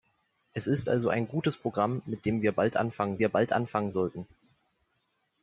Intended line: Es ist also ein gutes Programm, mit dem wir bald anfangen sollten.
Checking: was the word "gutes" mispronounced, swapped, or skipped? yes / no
no